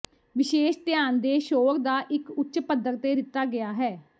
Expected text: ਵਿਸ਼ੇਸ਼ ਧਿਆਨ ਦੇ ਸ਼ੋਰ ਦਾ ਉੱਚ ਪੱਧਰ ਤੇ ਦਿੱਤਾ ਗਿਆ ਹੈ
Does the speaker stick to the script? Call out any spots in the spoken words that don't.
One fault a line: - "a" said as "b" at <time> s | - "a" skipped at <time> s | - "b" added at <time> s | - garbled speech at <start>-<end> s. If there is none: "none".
- "ਇੱਕ" added at 2.1 s